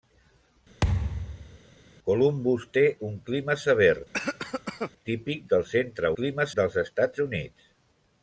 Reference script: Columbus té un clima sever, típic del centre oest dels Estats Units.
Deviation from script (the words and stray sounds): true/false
true